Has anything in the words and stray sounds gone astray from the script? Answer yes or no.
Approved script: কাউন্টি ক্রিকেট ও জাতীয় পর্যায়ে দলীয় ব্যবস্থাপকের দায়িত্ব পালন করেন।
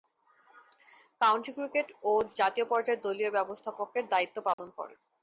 yes